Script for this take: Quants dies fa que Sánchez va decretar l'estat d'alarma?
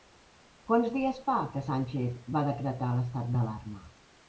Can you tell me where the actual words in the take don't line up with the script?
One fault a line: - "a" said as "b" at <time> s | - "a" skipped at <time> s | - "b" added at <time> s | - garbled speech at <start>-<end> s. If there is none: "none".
none